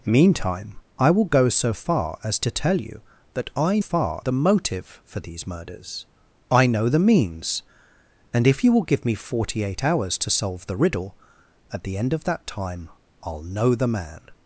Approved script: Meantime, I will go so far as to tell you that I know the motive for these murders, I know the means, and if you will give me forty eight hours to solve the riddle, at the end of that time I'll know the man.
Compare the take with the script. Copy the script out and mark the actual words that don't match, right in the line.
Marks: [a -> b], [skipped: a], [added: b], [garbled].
Meantime, I will go so far as to tell you that I [know -> far] the motive for these murders, I know the means, and if you will give me forty eight hours to solve the riddle, at the end of that time I'll know the man.